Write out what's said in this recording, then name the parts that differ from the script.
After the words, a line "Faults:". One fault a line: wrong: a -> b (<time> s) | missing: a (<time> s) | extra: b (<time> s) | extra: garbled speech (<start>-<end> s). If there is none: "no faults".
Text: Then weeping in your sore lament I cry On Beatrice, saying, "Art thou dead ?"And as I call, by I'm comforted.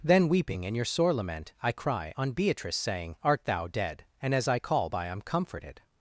Then weeping in your sore lament I cry On Beatrice, saying, "Art thou dead ?"And as I call, by I'm comforted.
Faults:
no faults